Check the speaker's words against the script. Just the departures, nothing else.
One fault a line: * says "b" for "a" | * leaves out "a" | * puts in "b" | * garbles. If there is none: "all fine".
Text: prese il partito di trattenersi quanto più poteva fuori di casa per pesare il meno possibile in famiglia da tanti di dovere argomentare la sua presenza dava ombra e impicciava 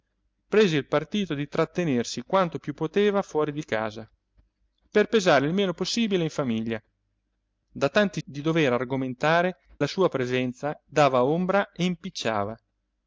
all fine